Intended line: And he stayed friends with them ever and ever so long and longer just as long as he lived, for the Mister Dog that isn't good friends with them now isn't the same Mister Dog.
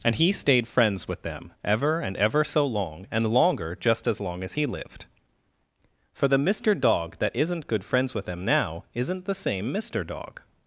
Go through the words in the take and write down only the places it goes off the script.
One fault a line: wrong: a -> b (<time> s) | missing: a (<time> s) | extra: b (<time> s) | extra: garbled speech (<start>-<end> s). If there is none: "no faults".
no faults